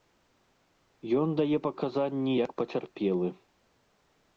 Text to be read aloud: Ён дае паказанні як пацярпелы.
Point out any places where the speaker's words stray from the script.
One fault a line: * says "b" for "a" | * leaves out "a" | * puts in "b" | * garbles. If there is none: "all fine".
all fine